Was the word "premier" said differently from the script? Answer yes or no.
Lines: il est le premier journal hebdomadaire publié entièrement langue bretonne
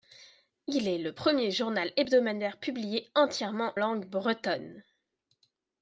no